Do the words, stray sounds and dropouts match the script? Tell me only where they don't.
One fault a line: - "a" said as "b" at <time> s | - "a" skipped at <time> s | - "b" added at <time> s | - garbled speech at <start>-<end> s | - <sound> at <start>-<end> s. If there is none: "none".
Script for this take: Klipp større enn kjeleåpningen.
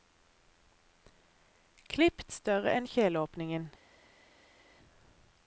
none